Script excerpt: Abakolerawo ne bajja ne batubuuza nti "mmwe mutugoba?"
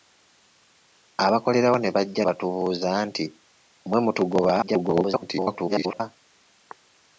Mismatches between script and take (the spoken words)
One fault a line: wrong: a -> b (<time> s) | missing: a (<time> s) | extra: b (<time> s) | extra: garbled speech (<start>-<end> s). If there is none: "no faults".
missing: ne (2.2 s)
extra: garbled speech (4.6-6.0 s)